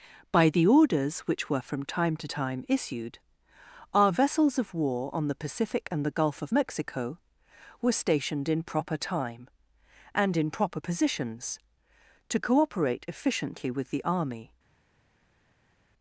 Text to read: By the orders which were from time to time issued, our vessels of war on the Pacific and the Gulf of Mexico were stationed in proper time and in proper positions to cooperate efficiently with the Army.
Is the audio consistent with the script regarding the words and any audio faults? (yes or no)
yes